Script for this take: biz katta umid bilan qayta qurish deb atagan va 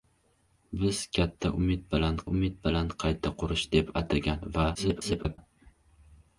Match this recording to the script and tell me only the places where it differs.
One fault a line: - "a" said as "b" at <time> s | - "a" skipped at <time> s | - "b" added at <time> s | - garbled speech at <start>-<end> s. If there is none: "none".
- "umid bilan" added at 2.3 s
- garbled speech at 4.7-5.4 s